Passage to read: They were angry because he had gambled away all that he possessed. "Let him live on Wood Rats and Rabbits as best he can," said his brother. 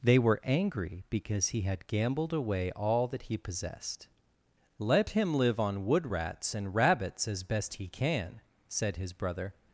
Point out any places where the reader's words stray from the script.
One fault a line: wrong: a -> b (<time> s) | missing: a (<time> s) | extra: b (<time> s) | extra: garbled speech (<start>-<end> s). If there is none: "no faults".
no faults